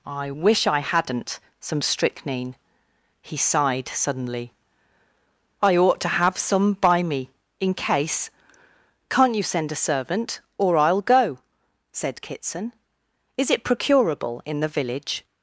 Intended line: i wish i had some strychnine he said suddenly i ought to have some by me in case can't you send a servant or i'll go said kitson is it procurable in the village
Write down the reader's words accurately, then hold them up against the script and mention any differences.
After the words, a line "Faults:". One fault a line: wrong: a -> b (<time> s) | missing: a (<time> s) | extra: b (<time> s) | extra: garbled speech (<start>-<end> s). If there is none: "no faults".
i wish i hadn't some strychnine he sighed suddenly i ought to have some by me in case can't you send a servant or i'll go said kitson is it procurable in the village
Faults:
wrong: had -> hadn't (0.8 s)
wrong: said -> sighed (3.4 s)